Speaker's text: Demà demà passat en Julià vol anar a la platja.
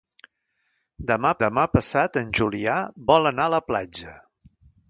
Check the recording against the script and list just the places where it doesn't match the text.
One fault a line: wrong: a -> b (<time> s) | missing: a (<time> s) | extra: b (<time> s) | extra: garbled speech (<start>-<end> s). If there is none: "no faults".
no faults